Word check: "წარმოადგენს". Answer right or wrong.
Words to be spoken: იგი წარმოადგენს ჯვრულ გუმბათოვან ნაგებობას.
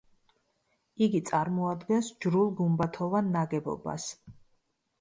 right